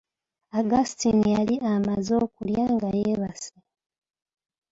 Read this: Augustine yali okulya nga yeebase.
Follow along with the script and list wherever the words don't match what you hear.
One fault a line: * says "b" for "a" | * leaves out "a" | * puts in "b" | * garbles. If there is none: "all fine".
* puts in "amaze"